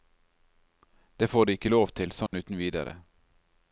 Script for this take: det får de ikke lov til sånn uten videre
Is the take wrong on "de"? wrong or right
right